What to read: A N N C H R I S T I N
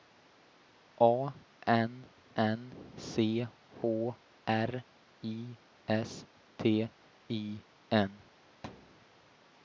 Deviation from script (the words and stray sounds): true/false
true